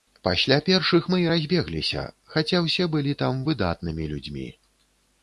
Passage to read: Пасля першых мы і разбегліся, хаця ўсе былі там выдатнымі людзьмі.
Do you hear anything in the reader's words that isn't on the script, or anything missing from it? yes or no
no